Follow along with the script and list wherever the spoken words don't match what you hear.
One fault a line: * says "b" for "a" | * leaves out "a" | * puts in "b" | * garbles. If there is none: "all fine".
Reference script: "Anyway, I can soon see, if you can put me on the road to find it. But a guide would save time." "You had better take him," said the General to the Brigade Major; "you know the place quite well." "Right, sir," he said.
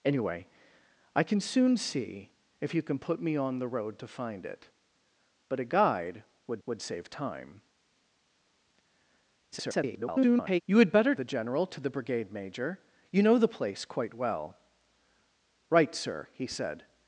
* puts in "would"
* garbles
* leaves out "take him said"